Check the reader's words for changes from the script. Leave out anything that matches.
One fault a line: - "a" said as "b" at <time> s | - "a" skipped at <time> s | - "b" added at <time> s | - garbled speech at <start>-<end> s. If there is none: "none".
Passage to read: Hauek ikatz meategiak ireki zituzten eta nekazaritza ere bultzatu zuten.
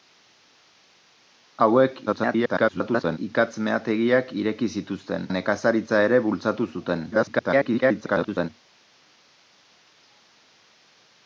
- garbled speech at 2.1-3.2 s
- "eta" skipped at 5.3 s
- garbled speech at 7.1-8.5 s